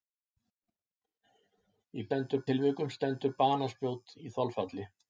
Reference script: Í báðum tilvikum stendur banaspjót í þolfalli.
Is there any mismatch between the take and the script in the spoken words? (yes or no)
yes